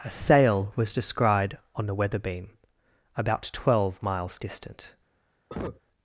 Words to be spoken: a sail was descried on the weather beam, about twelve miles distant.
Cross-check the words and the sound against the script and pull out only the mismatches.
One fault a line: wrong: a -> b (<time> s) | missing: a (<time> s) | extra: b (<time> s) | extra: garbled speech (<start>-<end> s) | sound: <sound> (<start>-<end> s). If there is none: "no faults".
sound: cough (5.5-5.8 s)